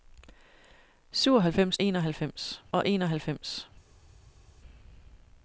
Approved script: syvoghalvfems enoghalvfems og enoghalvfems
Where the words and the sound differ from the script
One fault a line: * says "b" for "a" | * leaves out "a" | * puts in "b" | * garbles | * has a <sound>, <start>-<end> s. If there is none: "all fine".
all fine